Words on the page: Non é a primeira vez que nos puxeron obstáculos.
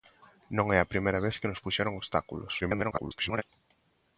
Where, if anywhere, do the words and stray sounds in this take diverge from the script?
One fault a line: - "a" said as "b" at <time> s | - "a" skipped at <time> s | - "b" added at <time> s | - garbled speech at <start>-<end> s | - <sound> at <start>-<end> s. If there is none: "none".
- garbled speech at 2.6-3.4 s